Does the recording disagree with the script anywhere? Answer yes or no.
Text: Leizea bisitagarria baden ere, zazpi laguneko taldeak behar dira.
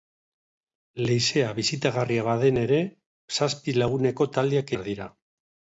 no